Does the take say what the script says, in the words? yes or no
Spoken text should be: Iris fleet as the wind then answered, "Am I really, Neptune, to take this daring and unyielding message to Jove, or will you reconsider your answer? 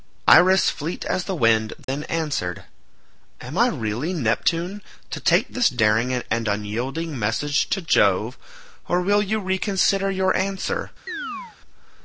yes